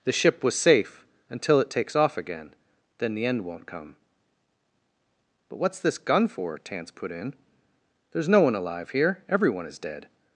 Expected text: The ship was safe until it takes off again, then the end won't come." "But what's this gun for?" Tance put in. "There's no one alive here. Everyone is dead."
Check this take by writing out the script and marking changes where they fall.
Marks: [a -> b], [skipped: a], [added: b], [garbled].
The ship was safe until it takes off again, then the end won't come." "But what's this gun for?" Tance put in. "There's no one alive here. Everyone is dead."